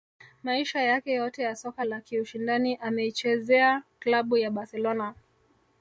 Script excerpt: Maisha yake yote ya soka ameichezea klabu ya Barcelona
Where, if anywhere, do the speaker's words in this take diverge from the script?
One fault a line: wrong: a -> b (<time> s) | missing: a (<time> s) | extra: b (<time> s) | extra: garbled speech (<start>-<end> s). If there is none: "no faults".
extra: la kiushindani (1.8 s)